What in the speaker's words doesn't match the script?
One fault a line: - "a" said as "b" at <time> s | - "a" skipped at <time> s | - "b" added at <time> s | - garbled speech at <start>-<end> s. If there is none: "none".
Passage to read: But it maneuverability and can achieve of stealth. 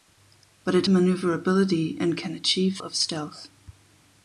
none